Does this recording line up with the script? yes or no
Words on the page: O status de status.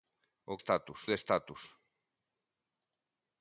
yes